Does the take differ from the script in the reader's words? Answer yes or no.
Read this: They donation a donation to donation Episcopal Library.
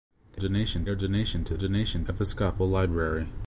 no